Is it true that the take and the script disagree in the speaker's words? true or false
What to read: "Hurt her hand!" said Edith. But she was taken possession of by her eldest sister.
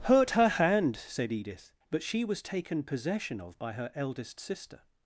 false